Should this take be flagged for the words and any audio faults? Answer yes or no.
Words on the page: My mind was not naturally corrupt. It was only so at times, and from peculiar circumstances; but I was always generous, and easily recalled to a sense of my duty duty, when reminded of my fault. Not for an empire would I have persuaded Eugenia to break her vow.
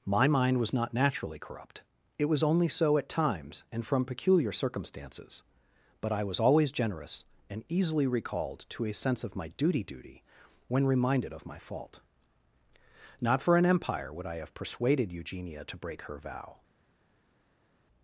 no